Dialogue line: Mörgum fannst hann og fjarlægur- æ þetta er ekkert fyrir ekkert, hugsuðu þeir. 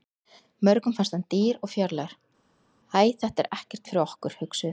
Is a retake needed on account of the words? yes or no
yes